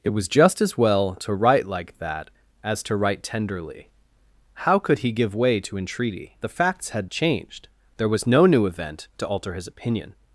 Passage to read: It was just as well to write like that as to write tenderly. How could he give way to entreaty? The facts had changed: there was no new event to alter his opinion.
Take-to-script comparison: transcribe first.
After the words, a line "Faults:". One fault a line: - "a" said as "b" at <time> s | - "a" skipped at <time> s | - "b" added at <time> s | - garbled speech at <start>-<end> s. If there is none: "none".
It was just as well to write like that as to write tenderly. How could he give way to entreaty? The facts had changed: there was no new event to alter his opinion.
Faults:
none